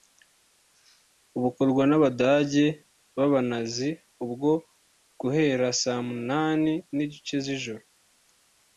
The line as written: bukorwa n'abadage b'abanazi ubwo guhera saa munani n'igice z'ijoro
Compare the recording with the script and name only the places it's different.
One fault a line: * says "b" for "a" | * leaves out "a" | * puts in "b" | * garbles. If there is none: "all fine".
all fine